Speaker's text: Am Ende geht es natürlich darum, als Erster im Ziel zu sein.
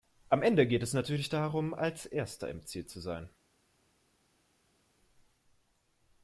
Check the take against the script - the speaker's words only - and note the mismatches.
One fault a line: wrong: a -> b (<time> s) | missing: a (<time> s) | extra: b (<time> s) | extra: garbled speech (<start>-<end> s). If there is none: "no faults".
no faults